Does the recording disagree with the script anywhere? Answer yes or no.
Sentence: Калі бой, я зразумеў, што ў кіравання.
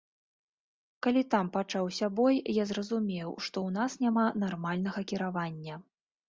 yes